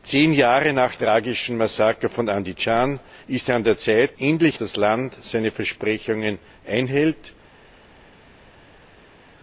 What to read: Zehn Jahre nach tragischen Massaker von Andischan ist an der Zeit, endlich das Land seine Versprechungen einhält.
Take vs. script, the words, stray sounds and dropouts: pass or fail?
pass